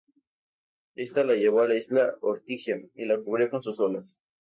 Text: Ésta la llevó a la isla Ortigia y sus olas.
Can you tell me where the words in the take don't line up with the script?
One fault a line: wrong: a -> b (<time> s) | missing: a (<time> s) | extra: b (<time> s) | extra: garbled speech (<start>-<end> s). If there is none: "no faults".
extra: la cubrió con (3.0 s)